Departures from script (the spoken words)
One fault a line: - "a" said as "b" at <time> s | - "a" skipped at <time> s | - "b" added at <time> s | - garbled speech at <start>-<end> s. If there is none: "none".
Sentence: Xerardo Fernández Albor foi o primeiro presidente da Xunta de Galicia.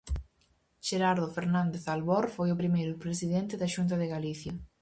none